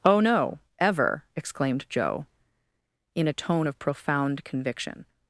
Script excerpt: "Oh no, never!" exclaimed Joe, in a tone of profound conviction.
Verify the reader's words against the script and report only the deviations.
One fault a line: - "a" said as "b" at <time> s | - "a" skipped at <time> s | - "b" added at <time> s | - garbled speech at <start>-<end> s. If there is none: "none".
- "never" said as "ever" at 0.8 s